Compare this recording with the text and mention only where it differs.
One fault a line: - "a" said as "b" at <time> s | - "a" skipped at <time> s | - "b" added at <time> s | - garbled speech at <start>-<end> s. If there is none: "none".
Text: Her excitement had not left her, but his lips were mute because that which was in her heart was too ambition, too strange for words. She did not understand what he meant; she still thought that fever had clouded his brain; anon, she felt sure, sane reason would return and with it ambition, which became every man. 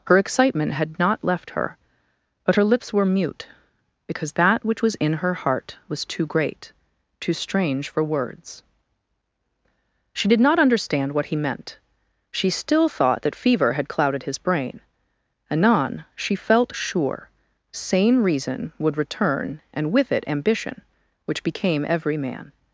- "his" said as "her" at 2.5 s
- "ambition" said as "great" at 6.2 s